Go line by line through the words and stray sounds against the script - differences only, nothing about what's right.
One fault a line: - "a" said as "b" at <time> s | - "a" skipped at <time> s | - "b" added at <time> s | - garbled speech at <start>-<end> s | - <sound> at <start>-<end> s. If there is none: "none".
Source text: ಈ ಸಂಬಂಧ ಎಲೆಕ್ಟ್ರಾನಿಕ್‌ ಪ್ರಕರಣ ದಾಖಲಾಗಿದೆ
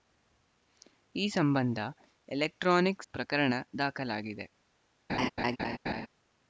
- laugh at 5.1-6.1 s